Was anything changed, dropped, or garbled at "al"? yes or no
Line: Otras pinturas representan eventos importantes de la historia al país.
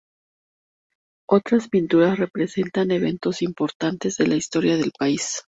yes